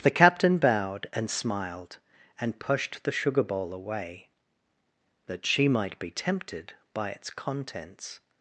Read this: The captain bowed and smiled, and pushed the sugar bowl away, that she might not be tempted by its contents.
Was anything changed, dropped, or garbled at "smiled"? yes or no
no